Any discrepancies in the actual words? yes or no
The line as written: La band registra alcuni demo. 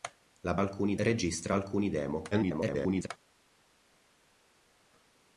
yes